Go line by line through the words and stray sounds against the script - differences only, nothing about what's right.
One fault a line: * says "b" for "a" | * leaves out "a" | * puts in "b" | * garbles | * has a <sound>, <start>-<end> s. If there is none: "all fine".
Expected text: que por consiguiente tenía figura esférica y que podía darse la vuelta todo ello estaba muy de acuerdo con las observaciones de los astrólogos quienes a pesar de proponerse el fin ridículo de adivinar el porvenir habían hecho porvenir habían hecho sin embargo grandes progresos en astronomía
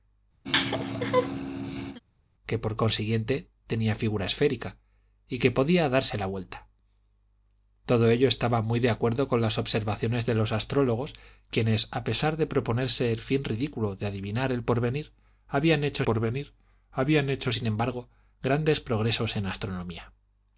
* has a laugh, 0.4-2.0 s